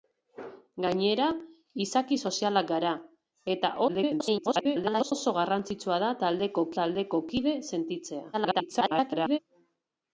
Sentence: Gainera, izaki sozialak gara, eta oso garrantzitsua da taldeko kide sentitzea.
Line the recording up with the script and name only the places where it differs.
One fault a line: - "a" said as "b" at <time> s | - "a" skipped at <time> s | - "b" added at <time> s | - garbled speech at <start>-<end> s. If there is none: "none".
- garbled speech at 3.9-5.1 s
- "taldeko" added at 6.8 s
- garbled speech at 8.3-9.4 s